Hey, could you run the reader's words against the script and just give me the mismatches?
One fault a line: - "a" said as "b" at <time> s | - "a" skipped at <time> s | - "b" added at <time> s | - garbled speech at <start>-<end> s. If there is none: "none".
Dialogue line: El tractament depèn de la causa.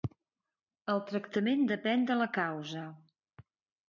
none